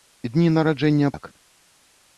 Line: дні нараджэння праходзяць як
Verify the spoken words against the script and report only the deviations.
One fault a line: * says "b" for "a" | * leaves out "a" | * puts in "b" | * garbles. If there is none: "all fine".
* leaves out "праходзяць"